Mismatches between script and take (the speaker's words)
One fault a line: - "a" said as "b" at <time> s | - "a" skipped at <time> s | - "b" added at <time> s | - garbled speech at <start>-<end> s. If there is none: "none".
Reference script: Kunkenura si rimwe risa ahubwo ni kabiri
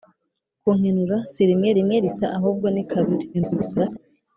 - "rimwe" added at 1.8 s
- garbled speech at 3.3-4.0 s